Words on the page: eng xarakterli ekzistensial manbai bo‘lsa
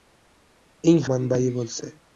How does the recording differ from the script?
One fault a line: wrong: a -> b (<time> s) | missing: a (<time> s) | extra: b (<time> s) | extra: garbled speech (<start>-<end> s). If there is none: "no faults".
missing: xarakterli ekzistensial (1.0 s)